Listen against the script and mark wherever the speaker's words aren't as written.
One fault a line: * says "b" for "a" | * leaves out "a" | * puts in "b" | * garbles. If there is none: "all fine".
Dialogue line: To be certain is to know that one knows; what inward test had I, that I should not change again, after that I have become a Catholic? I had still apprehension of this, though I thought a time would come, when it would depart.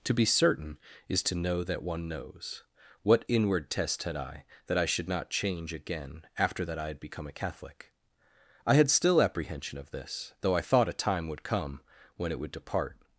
* says "had" for "have"